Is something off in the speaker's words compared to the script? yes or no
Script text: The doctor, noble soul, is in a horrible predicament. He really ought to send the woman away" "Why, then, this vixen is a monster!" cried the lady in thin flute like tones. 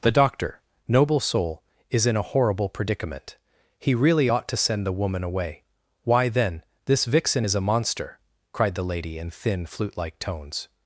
no